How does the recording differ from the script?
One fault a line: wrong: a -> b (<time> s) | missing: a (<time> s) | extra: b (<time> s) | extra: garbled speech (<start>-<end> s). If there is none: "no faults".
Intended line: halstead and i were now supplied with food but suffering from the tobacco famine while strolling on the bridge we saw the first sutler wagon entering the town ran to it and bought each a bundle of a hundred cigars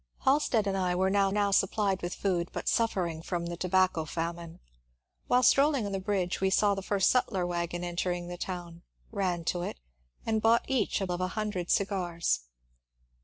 extra: now (1.3 s)
missing: bundle (11.1 s)